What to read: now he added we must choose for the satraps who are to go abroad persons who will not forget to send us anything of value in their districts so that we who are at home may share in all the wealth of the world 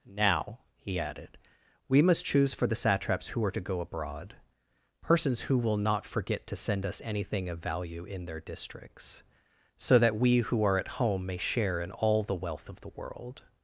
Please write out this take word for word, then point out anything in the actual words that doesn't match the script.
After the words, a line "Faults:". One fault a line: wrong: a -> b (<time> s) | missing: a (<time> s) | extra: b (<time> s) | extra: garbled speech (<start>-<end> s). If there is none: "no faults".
now he added we must choose for the satraps who are to go abroad persons who will not forget to send us anything of value in their districts so that we who are at home may share in all the wealth of the world
Faults:
no faults